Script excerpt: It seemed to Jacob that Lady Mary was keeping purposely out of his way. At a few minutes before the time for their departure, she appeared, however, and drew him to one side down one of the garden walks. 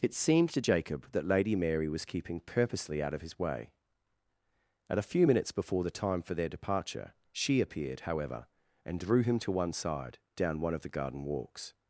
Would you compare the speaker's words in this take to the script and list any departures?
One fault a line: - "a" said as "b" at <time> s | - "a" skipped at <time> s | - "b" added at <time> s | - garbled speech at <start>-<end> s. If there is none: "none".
none